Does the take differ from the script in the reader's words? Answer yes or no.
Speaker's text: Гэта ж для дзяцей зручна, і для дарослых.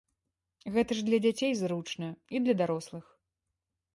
no